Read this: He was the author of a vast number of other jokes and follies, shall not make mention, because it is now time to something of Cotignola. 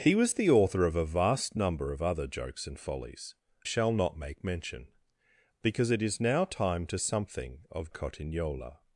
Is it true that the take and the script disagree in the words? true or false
false